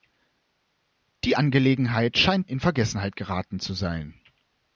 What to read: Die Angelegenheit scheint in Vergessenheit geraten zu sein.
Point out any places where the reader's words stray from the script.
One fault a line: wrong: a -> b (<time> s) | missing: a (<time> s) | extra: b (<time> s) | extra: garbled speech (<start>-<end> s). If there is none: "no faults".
no faults